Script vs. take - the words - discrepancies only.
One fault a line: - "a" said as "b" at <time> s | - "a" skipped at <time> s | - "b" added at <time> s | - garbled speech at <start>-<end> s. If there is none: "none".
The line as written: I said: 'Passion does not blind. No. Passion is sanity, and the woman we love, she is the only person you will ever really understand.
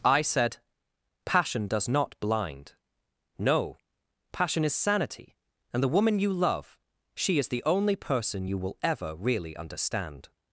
- "we" said as "you" at 6.2 s